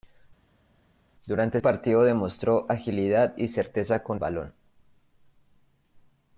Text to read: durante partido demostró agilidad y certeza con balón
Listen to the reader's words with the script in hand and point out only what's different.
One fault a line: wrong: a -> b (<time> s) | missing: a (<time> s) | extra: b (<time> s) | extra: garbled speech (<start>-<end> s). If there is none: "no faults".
no faults